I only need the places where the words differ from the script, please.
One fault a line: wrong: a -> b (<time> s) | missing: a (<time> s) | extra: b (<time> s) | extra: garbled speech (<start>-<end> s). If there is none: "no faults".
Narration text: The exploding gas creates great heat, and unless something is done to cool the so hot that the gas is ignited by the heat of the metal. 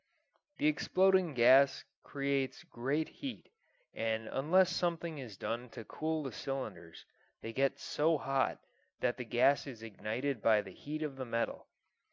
extra: cylinders they get (6.3 s)